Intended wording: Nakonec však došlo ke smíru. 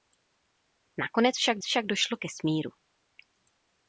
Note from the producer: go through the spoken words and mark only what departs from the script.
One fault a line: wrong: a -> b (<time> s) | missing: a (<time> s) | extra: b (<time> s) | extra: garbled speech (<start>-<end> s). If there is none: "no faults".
extra: však (1.6 s)